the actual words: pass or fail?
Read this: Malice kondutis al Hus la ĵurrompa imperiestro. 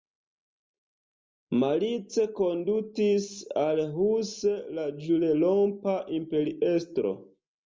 pass